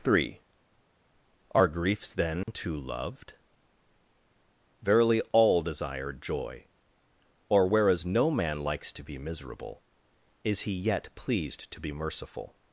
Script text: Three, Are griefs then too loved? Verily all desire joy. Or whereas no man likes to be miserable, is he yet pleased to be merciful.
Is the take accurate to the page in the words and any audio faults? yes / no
no